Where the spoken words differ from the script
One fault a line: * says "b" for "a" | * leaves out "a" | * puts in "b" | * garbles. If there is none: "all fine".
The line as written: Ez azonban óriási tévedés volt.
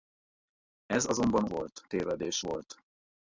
* says "volt" for "óriási"